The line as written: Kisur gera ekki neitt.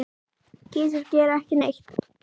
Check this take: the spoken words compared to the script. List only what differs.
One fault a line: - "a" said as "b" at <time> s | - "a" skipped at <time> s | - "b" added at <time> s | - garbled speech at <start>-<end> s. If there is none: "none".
none